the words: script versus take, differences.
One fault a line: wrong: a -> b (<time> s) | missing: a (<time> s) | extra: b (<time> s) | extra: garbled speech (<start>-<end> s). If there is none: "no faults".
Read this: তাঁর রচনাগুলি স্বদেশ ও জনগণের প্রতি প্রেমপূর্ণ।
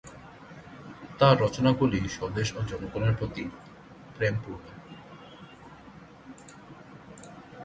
no faults